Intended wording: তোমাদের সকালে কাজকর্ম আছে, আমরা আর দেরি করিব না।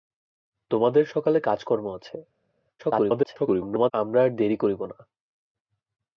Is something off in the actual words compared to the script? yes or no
yes